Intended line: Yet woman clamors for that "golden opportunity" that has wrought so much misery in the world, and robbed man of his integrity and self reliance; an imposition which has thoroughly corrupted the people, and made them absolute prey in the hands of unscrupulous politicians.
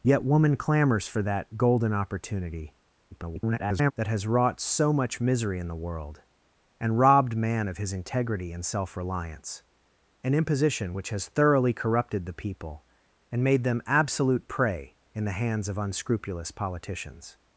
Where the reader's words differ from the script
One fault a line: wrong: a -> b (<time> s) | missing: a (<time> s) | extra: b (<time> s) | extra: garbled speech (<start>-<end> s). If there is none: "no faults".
extra: garbled speech (3.1-3.9 s)